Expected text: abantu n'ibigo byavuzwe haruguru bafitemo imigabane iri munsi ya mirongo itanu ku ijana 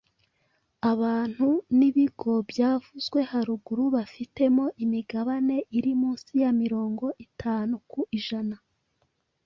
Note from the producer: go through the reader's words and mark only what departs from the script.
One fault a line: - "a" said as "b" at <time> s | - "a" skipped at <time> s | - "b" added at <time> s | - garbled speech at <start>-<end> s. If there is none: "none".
none